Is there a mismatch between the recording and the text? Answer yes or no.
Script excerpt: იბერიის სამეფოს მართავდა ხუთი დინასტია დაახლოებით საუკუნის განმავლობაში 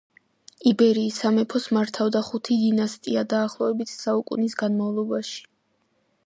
no